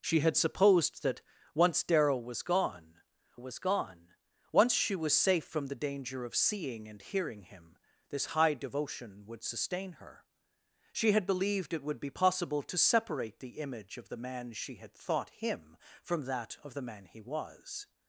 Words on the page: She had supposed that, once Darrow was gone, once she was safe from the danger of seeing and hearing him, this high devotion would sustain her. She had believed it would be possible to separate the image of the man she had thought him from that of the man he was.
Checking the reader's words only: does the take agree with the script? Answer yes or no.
no